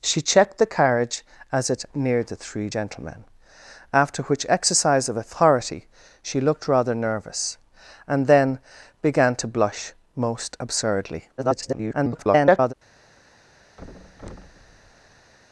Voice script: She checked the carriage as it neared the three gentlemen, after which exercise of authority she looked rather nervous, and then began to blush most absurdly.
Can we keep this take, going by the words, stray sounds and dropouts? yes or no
no